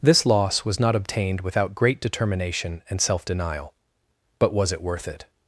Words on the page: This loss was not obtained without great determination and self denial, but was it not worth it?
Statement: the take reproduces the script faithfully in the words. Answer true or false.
false